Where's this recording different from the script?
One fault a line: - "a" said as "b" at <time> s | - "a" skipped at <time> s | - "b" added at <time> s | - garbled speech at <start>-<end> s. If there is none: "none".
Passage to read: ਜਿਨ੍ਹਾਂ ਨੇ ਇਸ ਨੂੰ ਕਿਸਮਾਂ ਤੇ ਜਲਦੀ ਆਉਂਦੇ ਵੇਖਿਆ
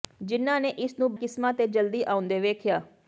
none